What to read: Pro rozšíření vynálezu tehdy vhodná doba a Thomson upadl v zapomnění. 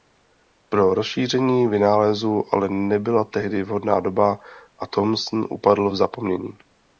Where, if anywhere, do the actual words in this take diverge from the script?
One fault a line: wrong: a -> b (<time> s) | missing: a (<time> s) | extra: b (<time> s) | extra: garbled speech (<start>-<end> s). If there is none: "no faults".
extra: ale nebyla (2.5 s)